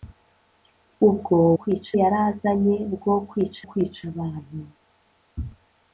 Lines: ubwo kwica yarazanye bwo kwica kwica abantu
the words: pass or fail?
pass